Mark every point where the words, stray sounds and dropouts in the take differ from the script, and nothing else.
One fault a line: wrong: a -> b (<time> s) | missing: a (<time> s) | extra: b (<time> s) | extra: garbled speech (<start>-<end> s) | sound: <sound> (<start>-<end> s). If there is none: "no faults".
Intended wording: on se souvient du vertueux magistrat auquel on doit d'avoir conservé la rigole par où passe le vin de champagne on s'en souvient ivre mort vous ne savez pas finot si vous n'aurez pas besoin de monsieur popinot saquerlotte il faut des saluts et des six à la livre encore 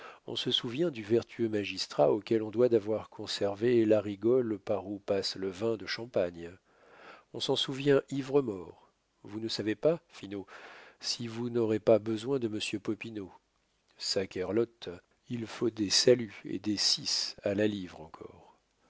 no faults